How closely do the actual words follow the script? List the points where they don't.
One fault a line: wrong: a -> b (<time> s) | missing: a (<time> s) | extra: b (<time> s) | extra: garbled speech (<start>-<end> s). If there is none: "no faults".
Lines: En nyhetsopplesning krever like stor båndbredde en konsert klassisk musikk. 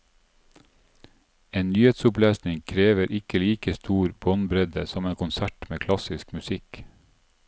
extra: ikke (3.2 s)
extra: som (4.9 s)
extra: med (5.7 s)